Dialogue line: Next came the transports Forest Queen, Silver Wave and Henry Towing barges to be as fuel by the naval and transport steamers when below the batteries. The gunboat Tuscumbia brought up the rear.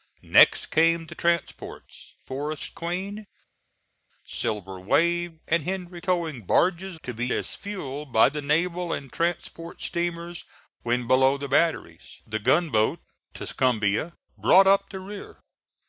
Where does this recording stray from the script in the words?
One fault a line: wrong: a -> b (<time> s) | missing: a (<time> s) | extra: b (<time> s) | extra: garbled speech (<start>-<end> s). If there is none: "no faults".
no faults